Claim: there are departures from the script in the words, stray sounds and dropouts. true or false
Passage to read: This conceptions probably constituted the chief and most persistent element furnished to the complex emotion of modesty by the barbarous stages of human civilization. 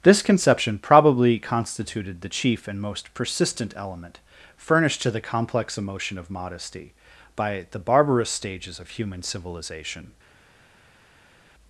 true